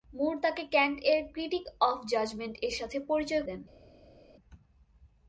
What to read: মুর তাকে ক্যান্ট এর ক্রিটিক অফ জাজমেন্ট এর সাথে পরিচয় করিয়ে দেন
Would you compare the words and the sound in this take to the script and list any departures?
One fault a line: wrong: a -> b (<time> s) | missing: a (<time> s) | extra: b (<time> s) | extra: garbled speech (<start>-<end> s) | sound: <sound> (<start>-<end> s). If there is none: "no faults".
missing: করিয়ে (3.4 s)